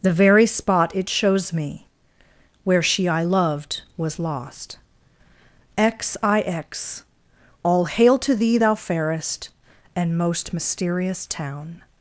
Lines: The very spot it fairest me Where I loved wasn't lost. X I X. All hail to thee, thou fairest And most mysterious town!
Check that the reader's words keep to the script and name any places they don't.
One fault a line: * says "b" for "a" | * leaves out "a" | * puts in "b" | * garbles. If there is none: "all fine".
* says "shows" for "fairest"
* puts in "she"
* says "was" for "wasn't"